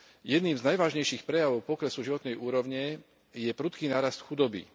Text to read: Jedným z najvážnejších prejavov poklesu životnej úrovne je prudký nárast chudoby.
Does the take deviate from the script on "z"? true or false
false